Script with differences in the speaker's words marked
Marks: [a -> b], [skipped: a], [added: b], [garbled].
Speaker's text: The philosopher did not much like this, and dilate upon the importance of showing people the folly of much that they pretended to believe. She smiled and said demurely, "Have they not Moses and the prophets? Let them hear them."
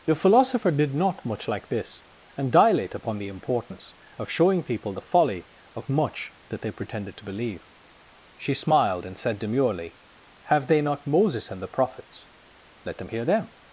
The philosopher did not much like this, and dilate upon the importance of showing people the folly of much that they pretended to believe. She smiled and said demurely, "Have they not Moses and the prophets? Let them hear them."